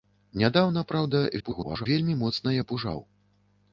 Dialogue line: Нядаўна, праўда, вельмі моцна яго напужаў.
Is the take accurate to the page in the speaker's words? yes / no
no